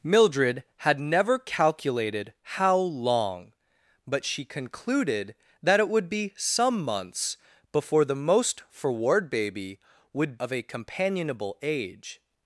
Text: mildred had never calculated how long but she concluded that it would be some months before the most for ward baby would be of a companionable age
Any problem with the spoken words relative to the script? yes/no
yes